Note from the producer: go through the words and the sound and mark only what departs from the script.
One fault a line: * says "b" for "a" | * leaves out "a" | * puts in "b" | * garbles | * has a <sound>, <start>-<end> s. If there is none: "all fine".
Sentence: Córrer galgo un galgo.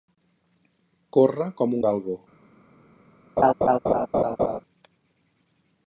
* says "com" for "galgo"
* has a laugh, 3.4-4.6 s